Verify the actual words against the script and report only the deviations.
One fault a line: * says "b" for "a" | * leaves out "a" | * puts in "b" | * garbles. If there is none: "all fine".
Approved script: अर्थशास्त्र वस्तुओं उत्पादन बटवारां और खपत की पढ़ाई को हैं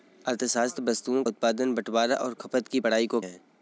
all fine